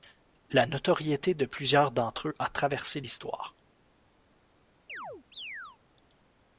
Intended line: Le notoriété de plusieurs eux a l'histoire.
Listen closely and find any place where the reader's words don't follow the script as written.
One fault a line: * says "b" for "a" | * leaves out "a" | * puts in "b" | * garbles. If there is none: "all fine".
* says "La" for "Le"
* puts in "d'entre"
* puts in "traversé"